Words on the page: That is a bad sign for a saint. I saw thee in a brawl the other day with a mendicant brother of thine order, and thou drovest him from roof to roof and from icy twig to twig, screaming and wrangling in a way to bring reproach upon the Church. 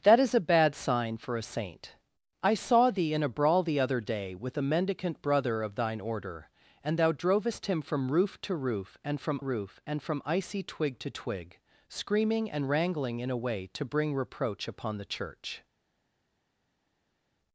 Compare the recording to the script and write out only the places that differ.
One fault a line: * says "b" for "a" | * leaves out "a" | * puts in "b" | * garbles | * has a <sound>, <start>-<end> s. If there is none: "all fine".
* puts in "roof and from"